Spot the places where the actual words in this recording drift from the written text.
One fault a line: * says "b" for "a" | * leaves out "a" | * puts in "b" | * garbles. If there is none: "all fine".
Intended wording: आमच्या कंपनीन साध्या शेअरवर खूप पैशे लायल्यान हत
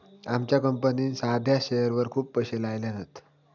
all fine